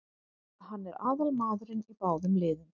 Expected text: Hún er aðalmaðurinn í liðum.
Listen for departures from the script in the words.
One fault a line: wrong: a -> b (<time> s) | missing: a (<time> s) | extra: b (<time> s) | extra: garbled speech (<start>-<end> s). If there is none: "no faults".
wrong: Hún -> Hann (0.7 s)
extra: báðum (2.0 s)